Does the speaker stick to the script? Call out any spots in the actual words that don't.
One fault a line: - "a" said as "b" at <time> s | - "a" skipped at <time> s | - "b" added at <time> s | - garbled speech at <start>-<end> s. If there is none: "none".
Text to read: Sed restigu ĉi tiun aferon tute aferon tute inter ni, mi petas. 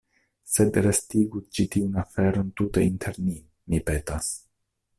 - "aferon tute" skipped at 2.9 s